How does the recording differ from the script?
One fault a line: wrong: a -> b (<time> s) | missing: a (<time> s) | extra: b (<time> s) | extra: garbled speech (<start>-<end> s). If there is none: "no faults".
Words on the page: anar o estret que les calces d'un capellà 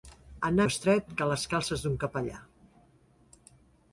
no faults